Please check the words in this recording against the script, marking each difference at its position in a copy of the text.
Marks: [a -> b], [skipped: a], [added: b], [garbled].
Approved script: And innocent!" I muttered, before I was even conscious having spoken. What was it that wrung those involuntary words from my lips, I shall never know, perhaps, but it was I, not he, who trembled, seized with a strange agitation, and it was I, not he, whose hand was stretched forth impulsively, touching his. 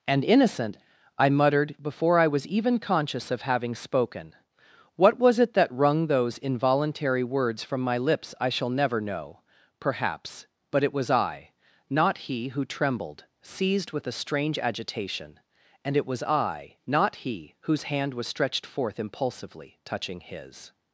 And innocent!" I muttered, before I was even conscious [added: of] having spoken. What was it that wrung those involuntary words from my lips, I shall never know, perhaps, but it was I, not he, who trembled, seized with a strange agitation, and it was I, not he, whose hand was stretched forth impulsively, touching his.